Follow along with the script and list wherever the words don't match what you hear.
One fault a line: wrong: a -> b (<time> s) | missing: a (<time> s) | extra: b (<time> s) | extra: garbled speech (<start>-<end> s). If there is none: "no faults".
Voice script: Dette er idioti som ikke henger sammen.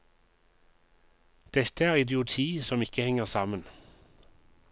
no faults